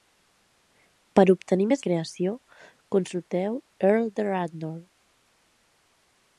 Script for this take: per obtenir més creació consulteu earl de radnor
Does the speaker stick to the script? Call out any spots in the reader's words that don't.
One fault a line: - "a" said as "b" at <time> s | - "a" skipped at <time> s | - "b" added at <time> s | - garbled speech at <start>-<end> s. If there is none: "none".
none